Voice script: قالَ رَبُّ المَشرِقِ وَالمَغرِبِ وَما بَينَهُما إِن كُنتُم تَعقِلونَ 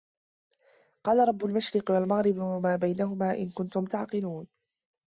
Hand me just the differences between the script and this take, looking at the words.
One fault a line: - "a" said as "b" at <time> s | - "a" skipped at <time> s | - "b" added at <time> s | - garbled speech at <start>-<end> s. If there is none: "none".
none